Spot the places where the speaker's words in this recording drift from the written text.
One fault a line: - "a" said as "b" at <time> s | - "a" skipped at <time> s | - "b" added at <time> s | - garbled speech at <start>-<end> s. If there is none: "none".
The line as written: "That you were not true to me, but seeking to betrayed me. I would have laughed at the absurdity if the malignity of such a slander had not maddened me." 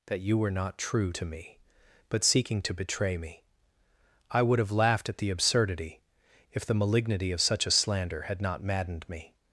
- "betrayed" said as "betray" at 2.7 s